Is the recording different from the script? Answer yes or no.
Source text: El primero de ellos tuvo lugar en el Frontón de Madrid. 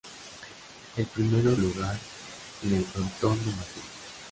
yes